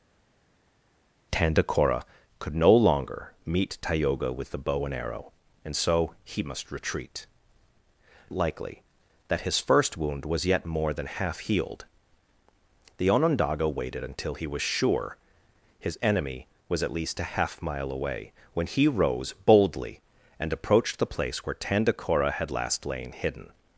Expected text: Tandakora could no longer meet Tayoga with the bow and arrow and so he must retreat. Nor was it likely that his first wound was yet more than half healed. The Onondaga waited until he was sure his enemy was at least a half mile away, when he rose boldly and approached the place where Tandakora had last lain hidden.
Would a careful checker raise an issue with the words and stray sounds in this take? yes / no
yes